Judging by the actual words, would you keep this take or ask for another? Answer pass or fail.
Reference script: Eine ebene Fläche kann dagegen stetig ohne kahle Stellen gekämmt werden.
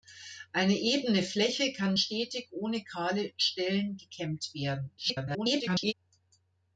fail